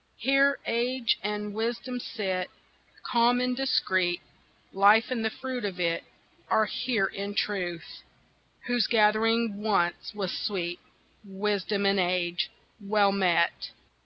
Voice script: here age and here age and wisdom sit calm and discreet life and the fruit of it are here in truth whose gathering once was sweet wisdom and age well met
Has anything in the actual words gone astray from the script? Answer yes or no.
yes